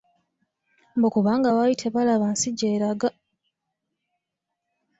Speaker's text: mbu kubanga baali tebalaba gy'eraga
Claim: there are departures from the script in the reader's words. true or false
true